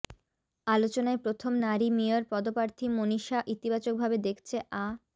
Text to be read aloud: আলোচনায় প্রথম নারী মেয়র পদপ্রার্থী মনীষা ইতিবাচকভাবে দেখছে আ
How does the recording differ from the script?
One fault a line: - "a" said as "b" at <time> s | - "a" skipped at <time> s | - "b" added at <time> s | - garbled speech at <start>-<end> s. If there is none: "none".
none